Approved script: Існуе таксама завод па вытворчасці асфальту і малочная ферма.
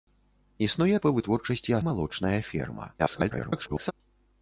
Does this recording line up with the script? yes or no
no